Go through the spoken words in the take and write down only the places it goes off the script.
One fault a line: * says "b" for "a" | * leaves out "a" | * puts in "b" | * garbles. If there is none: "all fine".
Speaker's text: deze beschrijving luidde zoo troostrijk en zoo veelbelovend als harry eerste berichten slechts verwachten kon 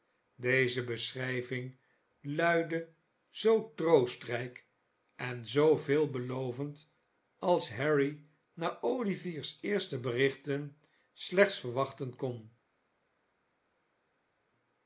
* puts in "na olivier's"